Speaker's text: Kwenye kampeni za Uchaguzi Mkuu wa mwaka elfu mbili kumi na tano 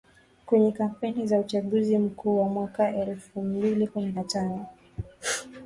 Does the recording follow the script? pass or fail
pass